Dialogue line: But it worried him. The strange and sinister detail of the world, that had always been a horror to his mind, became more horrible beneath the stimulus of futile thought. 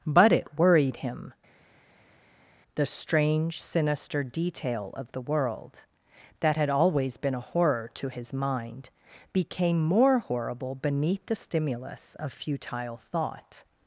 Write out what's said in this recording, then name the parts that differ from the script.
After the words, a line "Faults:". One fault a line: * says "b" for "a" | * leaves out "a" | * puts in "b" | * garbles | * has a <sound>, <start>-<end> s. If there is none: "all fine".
But it worried him. The strange sinister detail of the world, that had always been a horror to his mind, became more horrible beneath the stimulus of futile thought.
Faults:
* leaves out "and"